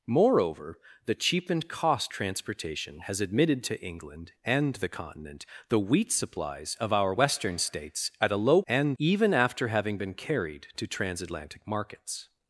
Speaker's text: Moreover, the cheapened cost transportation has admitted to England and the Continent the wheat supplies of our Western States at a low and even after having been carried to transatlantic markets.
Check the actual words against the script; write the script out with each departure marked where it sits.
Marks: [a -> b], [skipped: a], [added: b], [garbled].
Moreover, the cheapened cost transportation has admitted to England and the Continent the wheat supplies of our Western States at a low and even after having been carried to transatlantic markets.